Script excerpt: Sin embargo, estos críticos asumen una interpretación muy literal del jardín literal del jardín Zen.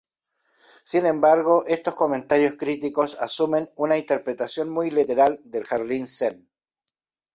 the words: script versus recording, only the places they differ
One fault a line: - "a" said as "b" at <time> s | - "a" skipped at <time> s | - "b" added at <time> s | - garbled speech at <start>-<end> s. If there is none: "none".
- "comentarios" added at 1.9 s
- "literal del jardín" skipped at 6.1 s